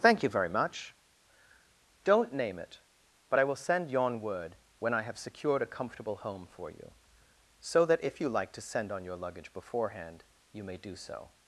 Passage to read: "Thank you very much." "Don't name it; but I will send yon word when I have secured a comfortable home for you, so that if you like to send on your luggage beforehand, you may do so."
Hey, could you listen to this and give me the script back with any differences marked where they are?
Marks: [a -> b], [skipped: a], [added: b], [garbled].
"Thank you very much." "Don't name it; but I will send yon word when I have secured a comfortable home for you, so that if you like to send on your luggage beforehand, you may do so."